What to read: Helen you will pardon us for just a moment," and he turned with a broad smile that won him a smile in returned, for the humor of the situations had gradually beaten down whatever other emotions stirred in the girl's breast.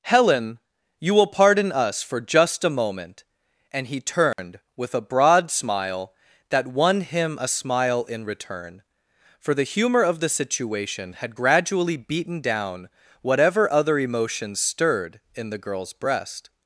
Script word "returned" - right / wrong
wrong